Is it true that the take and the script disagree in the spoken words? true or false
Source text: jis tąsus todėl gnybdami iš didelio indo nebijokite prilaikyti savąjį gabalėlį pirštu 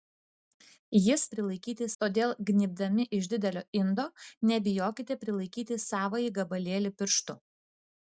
true